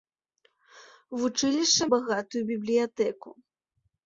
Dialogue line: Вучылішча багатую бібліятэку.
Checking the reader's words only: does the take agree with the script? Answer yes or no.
yes